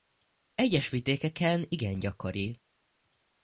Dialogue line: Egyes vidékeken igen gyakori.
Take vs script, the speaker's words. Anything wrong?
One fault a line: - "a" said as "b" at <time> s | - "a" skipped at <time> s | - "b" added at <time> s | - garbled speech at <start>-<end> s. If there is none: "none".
none